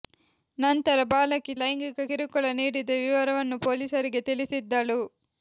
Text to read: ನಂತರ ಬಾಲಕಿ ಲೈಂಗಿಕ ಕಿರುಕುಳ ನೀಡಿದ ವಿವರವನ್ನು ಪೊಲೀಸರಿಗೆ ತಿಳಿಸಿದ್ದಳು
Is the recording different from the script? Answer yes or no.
no